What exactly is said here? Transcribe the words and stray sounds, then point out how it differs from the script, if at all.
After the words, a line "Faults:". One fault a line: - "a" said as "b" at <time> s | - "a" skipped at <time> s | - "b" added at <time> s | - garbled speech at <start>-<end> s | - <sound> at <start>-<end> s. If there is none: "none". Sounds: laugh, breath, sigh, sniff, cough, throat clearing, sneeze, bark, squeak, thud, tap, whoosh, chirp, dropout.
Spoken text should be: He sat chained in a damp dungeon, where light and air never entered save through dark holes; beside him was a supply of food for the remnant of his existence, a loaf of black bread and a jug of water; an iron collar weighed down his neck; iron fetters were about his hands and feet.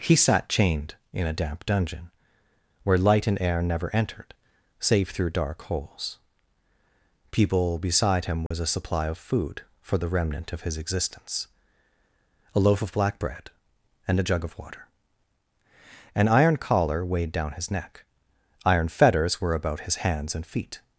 He sat chained in a damp dungeon, where light and air never entered save through dark holes; people beside him was a supply of food for the remnant of his existence, a loaf of black bread and a jug of water; an iron collar weighed down his neck; iron fetters were about his hands and feet.
Faults:
- "people" added at 7.3 s
- dropout at 8.5-8.5 s